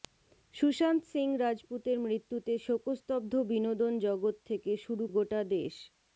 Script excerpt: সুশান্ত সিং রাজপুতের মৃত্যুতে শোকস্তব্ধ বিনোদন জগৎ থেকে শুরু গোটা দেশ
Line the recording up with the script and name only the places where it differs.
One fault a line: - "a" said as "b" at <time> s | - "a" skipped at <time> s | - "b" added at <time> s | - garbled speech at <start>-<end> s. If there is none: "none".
none